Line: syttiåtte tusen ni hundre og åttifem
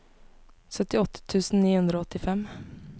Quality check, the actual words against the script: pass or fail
pass